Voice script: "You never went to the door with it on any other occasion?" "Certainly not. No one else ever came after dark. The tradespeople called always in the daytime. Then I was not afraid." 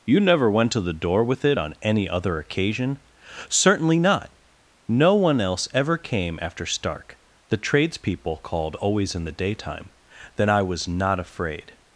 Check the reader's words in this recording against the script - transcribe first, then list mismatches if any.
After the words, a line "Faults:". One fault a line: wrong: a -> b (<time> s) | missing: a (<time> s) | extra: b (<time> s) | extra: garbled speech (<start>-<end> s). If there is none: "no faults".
"You never went to the door with it on any other occasion?" "Certainly not. No one else ever came after stark. The tradespeople called always in the daytime. Then I was not afraid."
Faults:
wrong: dark -> stark (6.7 s)